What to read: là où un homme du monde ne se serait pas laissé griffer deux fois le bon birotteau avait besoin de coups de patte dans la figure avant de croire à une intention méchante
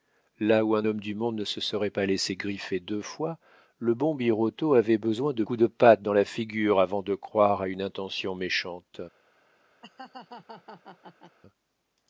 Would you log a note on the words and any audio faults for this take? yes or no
yes